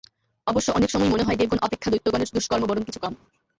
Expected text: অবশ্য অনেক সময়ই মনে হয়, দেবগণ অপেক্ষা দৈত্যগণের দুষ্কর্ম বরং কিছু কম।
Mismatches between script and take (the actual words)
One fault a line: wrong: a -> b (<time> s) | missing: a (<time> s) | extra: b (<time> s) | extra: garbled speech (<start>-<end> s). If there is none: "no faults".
no faults